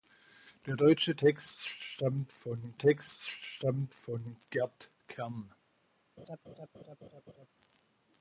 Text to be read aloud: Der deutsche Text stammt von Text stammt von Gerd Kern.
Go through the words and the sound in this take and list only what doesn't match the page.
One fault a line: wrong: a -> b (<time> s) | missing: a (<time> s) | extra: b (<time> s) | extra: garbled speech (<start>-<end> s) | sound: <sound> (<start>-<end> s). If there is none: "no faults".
sound: laugh (6.2-7.5 s)